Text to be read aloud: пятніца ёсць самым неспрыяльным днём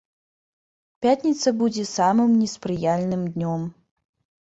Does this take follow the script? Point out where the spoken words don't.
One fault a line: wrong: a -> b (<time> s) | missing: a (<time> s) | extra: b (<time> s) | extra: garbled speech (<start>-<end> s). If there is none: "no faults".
wrong: ёсць -> будзе (1.6 s)